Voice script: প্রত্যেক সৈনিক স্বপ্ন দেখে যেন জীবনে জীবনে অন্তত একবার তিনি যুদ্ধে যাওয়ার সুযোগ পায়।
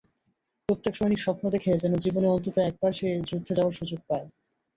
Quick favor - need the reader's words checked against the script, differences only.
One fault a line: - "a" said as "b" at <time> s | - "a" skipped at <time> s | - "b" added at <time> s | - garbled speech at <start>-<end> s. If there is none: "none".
- "জীবনে" skipped at 2.3 s
- "তিনি" said as "সে" at 2.9 s